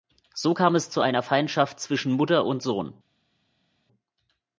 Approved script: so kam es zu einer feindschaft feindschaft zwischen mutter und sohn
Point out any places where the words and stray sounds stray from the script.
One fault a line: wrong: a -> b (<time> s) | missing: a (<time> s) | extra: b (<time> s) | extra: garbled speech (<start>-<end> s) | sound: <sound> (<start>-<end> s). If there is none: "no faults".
missing: feindschaft (1.8 s)